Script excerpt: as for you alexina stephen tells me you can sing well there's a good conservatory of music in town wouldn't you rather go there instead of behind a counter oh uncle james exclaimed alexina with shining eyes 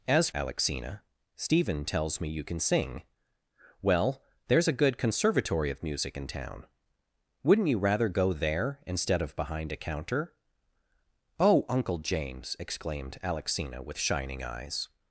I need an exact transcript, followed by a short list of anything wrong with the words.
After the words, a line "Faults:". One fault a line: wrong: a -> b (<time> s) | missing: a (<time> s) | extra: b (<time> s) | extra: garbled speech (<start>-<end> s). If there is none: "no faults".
as alexina stephen tells me you can sing well there's a good conservatory of music in town wouldn't you rather go there instead of behind a counter oh uncle james exclaimed alexina with shining eyes
Faults:
missing: for you (0.3 s)